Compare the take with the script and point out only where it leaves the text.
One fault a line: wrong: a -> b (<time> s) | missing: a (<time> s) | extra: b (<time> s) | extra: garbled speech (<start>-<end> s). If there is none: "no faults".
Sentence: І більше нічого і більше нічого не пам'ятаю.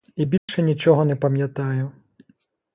missing: і більше нічого (1.1 s)